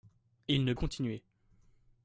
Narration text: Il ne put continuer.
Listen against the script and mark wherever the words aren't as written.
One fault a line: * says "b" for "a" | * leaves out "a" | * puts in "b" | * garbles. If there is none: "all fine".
* leaves out "put"